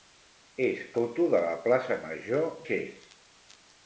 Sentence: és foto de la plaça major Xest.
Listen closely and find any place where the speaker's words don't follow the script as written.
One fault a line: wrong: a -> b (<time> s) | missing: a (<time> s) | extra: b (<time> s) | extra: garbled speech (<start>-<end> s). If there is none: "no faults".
no faults